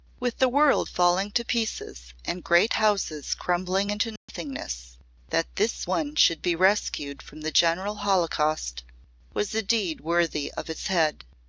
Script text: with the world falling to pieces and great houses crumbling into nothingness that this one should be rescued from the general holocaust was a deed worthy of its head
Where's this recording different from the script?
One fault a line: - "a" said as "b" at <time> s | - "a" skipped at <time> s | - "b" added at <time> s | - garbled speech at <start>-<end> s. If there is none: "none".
none